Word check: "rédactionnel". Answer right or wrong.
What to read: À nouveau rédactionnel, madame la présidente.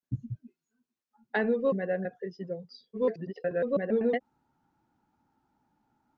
wrong